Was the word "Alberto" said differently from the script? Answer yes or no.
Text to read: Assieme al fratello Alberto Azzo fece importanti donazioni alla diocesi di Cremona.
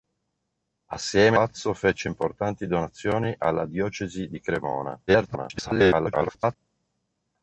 yes